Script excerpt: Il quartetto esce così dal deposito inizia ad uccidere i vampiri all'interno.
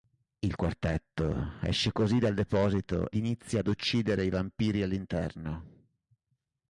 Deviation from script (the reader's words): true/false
false